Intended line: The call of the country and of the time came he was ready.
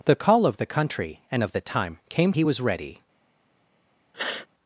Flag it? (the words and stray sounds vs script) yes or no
yes